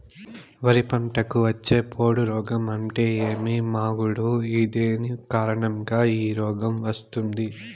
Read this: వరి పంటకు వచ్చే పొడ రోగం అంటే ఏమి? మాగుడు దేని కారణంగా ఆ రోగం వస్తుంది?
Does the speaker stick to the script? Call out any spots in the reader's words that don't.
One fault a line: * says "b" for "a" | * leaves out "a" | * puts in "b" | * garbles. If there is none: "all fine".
* says "ఈ" for "ఆ"